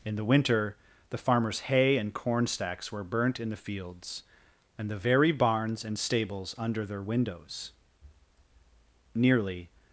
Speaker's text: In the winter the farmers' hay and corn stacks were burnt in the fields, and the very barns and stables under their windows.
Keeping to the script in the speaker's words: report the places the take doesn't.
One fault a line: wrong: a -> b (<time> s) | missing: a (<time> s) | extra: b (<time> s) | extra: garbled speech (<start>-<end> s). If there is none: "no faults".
extra: Nearly (9.1 s)